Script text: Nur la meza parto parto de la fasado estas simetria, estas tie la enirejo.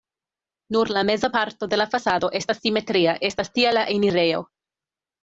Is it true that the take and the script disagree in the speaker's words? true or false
true